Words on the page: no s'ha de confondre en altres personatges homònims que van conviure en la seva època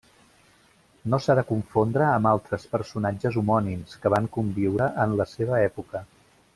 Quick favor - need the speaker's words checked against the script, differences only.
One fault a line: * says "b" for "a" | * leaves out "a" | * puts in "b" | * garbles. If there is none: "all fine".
* says "amb" for "en"